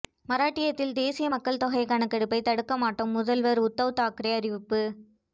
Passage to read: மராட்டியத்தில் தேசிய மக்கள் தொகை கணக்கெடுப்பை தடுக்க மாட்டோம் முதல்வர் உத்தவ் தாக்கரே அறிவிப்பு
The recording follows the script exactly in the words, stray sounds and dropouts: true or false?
true